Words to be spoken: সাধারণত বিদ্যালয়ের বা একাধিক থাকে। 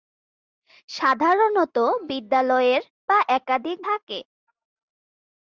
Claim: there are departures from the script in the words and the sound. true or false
false